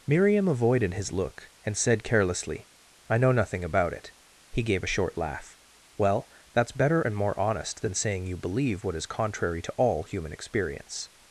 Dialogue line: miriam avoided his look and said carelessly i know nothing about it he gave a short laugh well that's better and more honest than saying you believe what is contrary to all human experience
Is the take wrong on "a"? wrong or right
right